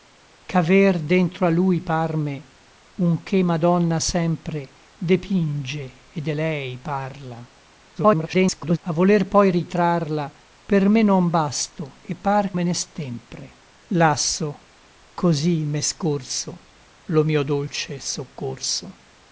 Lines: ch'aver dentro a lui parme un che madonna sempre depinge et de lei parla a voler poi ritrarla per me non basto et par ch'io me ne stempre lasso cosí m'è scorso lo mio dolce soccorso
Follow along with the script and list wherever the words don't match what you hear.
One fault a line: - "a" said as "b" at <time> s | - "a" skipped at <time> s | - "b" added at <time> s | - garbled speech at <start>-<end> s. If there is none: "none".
- garbled speech at 8.0-8.8 s
- "ch'io" skipped at 12.6 s